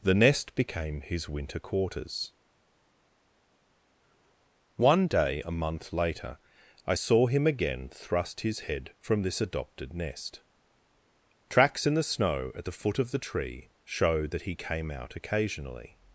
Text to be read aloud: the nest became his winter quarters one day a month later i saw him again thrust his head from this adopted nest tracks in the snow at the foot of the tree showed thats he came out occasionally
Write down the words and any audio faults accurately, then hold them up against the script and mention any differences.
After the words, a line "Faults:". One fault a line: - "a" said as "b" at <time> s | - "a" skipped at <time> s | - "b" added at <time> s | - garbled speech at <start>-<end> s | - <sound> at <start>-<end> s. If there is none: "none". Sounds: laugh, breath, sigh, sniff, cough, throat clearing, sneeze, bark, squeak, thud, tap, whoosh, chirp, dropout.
the nest became his winter quarters one day a month later i saw him again thrust his head from this adopted nest tracks in the snow at the foot of the tree showed that he came out occasionally
Faults:
- "thats" said as "that" at 14.3 s